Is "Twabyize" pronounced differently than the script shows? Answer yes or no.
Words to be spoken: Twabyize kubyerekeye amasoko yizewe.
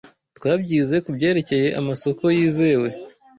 no